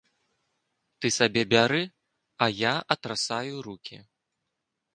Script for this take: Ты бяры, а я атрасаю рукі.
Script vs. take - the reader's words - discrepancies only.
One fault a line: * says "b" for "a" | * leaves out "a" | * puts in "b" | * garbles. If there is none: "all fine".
* puts in "сабе"